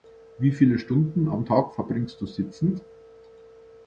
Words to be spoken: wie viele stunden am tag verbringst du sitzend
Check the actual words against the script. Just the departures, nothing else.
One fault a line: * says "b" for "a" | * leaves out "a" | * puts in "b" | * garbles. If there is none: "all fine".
all fine